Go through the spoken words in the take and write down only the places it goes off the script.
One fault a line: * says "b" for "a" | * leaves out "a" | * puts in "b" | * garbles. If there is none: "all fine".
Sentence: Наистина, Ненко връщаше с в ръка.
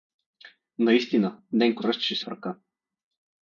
all fine